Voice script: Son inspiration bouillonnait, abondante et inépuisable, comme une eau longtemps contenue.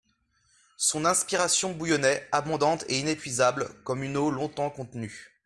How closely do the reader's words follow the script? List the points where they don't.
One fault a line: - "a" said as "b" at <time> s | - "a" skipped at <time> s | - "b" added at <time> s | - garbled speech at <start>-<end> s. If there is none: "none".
none